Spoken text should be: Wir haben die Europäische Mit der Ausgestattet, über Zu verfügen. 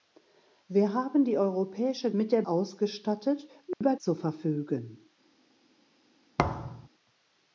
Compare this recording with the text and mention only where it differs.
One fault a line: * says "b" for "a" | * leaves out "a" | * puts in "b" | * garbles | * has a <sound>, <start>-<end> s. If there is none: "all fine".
* has a dropout, 3.7-3.8 s
* has a thud, 6.4-6.9 s